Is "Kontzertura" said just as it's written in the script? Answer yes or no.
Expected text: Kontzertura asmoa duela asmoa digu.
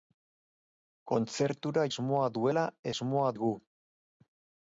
yes